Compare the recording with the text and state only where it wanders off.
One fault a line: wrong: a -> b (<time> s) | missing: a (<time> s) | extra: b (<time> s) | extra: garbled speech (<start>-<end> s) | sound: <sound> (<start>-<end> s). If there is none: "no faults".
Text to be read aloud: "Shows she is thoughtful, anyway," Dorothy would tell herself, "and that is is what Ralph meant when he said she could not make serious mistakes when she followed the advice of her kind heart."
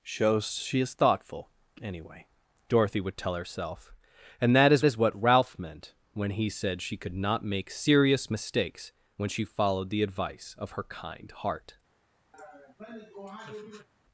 sound: laugh (12.3-13.9 s)